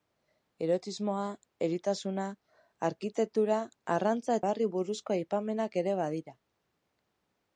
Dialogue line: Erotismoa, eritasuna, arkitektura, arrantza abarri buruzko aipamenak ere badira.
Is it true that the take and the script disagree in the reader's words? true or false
false